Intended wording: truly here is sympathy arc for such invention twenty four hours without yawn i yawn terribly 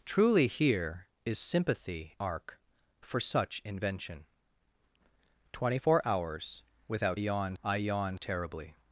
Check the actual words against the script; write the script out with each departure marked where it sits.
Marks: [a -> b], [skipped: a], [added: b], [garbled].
truly here is sympathy arc for such invention twenty four hours without yawn i yawn terribly